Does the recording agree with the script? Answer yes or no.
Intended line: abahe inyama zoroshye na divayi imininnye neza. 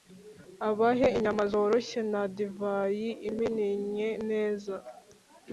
yes